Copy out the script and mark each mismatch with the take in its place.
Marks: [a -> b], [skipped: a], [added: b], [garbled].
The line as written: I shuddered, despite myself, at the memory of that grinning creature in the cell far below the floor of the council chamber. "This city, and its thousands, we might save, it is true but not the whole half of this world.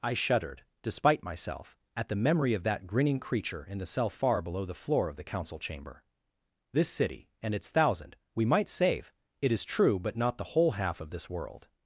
I shuddered, despite myself, at the memory of that grinning creature in the cell far below the floor of the council chamber. "This city, and its [thousands, -> thousand] we might save, it is true but not the whole half of this world.